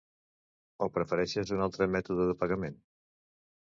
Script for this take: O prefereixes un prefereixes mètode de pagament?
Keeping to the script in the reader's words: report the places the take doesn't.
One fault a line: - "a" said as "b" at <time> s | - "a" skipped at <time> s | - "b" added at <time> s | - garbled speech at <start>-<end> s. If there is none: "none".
- "prefereixes" said as "altre" at 1.7 s